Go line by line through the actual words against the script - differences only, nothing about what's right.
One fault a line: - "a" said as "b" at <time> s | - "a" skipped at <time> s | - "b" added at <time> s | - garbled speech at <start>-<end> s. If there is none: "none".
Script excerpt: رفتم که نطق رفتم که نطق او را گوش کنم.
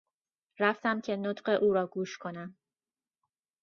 - "رفتم که نطق" skipped at 1.6 s